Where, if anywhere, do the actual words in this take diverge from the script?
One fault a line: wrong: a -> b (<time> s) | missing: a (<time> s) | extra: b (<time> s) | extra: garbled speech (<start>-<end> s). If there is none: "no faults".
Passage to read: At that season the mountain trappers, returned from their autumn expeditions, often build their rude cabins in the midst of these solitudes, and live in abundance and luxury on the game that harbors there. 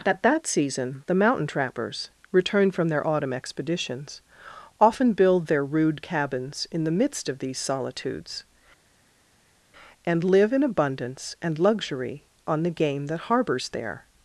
no faults